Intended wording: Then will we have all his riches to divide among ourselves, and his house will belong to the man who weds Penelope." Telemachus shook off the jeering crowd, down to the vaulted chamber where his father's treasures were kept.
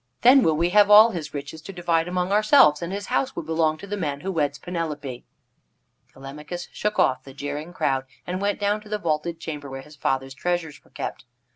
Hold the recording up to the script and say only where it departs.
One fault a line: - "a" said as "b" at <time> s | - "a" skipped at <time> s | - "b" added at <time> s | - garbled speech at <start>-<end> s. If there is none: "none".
- "and went" added at 8.3 s